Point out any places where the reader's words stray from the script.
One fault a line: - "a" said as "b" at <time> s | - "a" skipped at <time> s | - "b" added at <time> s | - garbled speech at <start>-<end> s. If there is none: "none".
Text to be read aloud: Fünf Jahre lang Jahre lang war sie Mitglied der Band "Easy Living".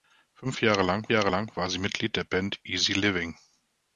none